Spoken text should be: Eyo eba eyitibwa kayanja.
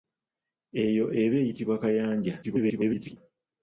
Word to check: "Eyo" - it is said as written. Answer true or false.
true